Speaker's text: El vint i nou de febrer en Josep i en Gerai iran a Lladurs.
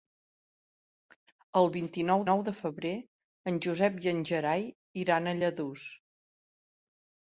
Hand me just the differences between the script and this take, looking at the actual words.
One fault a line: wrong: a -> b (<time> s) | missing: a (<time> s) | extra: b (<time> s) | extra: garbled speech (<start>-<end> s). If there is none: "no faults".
extra: nou (2.3 s)